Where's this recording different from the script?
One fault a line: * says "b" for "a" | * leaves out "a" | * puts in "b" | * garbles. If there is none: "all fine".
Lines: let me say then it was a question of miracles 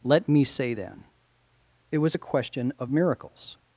all fine